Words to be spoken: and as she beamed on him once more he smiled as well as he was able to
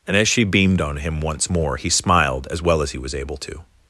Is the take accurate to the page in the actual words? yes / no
yes